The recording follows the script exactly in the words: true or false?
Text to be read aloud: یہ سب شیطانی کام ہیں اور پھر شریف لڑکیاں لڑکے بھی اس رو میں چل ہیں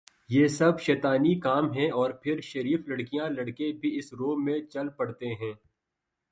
false